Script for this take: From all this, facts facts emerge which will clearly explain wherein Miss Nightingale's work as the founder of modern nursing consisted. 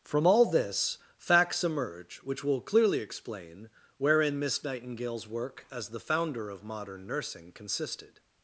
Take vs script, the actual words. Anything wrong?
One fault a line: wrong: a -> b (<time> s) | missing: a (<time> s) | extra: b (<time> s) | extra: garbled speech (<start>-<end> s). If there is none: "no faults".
missing: facts (1.6 s)